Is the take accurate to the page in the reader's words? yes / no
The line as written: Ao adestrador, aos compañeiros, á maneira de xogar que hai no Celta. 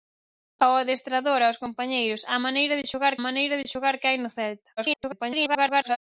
no